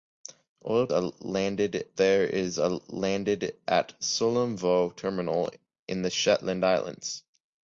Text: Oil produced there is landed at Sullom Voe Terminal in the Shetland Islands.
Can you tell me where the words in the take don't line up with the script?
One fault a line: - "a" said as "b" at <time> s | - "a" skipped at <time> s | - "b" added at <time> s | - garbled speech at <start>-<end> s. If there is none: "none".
- "produced" said as "landed" at 0.9 s